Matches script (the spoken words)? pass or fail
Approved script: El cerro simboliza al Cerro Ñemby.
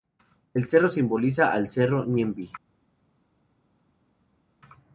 pass